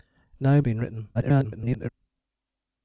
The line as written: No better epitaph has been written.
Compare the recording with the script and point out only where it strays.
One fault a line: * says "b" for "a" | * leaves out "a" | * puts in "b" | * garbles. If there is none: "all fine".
* leaves out "better epitaph has"
* garbles